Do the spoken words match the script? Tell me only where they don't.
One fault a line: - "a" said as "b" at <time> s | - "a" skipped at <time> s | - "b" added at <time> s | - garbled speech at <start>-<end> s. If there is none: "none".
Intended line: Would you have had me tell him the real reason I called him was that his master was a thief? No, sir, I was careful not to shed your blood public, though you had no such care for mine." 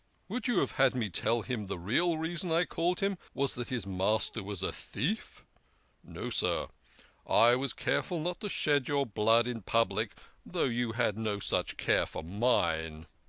- "in" added at 9.4 s